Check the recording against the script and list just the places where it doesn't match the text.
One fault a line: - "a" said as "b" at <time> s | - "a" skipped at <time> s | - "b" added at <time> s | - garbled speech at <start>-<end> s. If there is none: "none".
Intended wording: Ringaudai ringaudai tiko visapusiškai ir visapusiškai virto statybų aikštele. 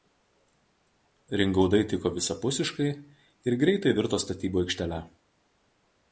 - "ringaudai" skipped at 1.8 s
- "visapusiškai" said as "greitai" at 3.6 s